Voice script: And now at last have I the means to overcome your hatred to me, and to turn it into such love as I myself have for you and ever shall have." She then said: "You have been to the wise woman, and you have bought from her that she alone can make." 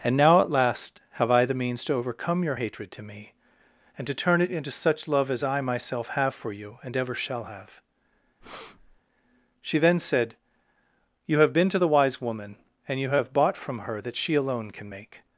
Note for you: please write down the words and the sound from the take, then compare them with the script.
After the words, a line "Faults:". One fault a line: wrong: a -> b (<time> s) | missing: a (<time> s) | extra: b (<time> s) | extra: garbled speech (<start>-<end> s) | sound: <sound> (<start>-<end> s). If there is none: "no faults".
And now at last have I the means to overcome your hatred to me, and to turn it into such love as I myself have for you and ever shall have." She then said: "You have been to the wise woman, and you have bought from her that she alone can make."
Faults:
sound: breath (8.4-9.0 s)